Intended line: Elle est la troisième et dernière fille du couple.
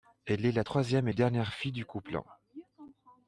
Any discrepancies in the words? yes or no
no